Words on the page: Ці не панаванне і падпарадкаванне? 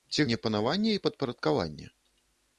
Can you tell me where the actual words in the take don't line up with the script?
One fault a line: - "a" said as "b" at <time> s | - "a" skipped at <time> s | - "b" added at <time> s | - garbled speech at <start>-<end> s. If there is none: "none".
none